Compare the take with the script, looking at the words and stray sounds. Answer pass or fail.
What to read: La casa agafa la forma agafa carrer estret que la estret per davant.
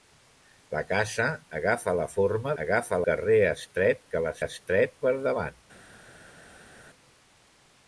pass